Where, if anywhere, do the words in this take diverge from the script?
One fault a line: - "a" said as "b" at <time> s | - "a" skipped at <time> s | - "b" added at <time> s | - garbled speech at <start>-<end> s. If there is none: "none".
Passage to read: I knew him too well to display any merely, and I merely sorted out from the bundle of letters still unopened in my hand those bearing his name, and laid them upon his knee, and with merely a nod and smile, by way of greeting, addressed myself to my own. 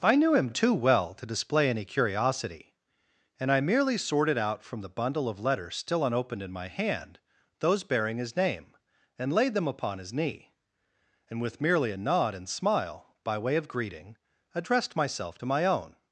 - "merely" said as "curiosity" at 1.9 s